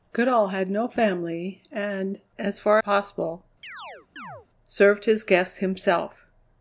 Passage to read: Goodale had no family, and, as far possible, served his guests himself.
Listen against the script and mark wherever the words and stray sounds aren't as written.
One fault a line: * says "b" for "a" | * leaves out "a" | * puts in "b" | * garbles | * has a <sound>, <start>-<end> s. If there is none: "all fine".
* has a chirp, 3.6-4.5 s